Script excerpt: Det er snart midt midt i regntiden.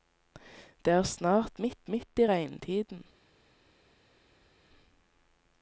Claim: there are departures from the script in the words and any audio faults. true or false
false